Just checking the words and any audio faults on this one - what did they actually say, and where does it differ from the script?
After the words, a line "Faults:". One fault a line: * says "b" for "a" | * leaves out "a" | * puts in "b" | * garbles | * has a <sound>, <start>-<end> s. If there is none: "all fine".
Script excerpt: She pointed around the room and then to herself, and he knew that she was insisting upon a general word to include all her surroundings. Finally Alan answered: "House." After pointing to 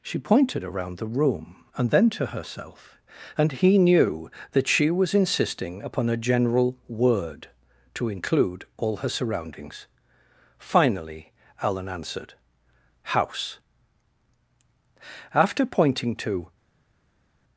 She pointed around the room and then to herself, and he knew that she was insisting upon a general word to include all her surroundings. Finally Alan answered: "House." After pointing to
Faults:
all fine